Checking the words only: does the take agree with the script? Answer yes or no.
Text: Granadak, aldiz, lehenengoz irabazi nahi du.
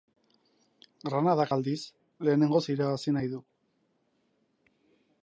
yes